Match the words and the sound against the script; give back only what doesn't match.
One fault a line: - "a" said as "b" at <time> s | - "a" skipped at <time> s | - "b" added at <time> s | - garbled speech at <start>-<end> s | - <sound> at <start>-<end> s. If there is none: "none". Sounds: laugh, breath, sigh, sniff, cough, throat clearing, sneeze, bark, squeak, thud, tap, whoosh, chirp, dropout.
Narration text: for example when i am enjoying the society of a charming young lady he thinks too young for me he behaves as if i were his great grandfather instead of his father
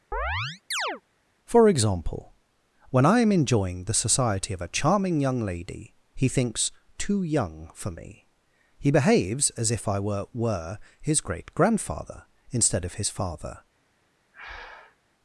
- chirp at 0.1-1.0 s
- "were" added at 10.3 s
- breath at 14.3-15.0 s